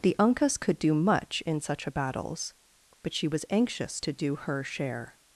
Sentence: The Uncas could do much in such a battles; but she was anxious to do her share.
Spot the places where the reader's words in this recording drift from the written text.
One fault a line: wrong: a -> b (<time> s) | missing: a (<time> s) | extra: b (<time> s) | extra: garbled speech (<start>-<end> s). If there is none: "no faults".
no faults